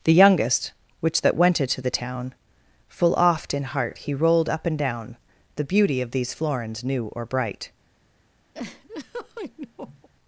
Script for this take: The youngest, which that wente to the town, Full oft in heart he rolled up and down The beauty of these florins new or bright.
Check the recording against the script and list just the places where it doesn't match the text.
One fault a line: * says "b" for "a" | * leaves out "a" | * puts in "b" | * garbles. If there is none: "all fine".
all fine